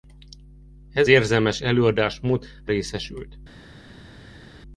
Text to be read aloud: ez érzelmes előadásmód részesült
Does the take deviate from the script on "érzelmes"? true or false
false